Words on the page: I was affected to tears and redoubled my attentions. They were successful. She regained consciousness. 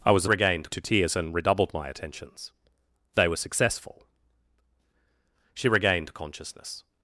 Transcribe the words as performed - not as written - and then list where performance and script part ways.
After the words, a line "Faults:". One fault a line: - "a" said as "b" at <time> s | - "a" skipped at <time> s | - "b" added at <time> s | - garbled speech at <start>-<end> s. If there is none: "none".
I was regained to tears and redoubled my attentions. They were successful. She regained consciousness.
Faults:
- "affected" said as "regained" at 0.2 s